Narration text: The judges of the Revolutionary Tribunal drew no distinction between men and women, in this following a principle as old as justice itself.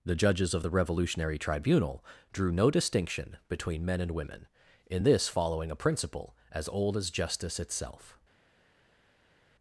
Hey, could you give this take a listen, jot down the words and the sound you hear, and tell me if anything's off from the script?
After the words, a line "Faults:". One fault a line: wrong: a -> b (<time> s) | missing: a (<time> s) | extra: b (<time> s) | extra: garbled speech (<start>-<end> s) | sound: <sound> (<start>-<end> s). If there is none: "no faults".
The judges of the Revolutionary Tribunal drew no distinction between men and women, in this following a principle as old as justice itself.
Faults:
no faults